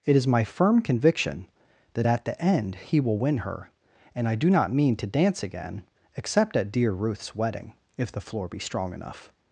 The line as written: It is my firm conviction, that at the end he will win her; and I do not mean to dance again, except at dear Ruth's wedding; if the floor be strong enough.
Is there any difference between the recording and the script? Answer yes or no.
no